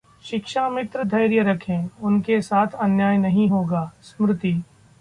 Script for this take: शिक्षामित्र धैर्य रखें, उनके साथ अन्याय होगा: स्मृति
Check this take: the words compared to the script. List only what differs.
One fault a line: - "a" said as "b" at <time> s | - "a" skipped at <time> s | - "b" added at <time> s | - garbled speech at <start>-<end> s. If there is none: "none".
- "नहीं" added at 3.2 s